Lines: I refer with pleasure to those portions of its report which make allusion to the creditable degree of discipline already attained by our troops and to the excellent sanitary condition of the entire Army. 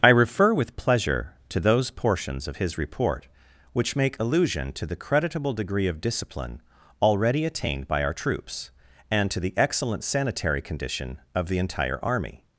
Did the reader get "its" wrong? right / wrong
wrong